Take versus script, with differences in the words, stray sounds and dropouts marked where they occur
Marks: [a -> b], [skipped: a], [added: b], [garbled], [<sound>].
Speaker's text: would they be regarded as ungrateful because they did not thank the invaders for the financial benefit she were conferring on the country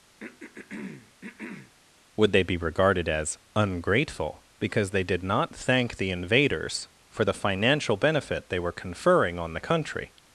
[throat clearing] would they be regarded as ungrateful because they did not thank the invaders for the financial benefit [she -> they] were conferring on the country